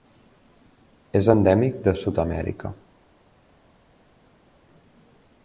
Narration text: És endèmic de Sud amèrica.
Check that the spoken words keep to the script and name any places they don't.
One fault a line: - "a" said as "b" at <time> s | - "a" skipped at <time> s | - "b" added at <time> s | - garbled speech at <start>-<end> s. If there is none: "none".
none